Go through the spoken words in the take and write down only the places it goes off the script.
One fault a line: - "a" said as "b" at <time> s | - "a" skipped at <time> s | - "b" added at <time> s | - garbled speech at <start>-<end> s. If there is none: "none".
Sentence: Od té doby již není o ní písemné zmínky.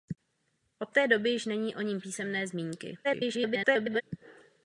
- garbled speech at 3.0-4.0 s